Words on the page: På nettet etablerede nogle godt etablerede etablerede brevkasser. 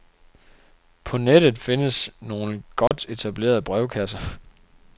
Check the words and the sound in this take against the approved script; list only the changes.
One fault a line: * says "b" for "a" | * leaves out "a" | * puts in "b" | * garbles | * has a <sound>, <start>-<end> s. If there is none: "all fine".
* says "findes" for "etablerede"
* has a dropout, 2.9-2.9 s
* leaves out "etablerede"